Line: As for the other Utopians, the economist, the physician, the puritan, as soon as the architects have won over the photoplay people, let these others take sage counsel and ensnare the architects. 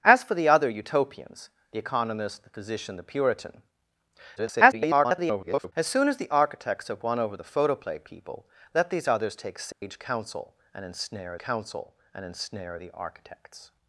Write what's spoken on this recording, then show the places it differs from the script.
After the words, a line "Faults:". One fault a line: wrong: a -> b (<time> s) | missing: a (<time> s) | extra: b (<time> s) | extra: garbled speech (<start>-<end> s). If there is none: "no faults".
As for the other Utopians, the economist, the physician, the puritan, [garbled] as soon as the architects have won over the photoplay people, let these others take sage counsel and ensnare counsel and ensnare the architects.
Faults:
extra: garbled speech (4.4-5.7 s)
extra: counsel and ensnare (11.4 s)